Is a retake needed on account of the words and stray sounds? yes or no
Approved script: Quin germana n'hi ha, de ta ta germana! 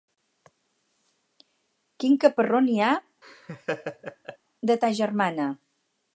yes